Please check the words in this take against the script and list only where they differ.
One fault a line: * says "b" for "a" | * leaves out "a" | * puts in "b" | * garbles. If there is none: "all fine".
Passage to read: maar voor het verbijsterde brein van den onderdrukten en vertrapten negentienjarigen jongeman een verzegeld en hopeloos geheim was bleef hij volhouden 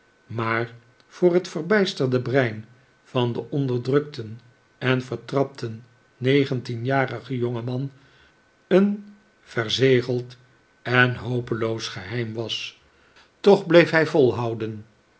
* puts in "toch"